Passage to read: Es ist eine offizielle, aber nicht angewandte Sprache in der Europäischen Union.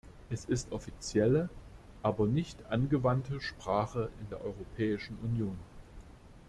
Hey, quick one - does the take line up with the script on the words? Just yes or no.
no